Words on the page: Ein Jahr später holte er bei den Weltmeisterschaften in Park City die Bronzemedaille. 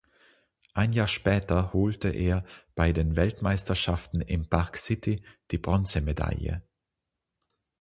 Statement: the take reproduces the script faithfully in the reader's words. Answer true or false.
true